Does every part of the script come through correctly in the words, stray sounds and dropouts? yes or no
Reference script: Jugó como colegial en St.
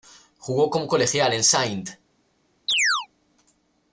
no